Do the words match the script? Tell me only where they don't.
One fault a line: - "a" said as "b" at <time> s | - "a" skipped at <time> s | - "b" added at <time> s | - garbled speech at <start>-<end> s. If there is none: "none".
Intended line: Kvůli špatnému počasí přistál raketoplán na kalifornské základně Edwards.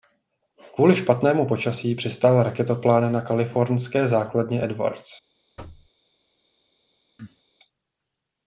none